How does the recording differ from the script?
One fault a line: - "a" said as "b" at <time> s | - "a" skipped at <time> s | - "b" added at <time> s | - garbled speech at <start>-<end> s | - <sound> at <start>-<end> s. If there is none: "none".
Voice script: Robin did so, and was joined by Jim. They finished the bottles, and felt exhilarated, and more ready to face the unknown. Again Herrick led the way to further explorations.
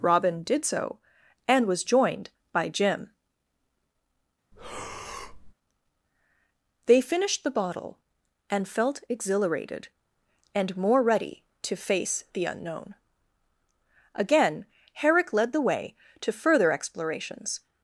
- breath at 4.5-5.5 s
- "bottles" said as "bottle" at 7.5 s